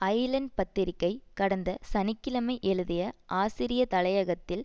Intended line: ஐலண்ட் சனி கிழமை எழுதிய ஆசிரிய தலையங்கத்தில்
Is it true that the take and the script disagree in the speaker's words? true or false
true